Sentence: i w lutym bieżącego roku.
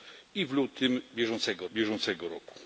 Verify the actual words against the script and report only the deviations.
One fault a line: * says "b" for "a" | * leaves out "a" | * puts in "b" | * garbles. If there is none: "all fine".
* puts in "bieżącego"